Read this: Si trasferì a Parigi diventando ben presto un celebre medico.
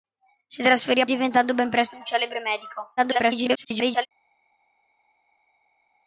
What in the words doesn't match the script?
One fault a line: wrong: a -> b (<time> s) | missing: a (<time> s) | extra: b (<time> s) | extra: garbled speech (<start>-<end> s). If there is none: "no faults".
missing: Parigi (1.1 s)
extra: garbled speech (3.0-4.1 s)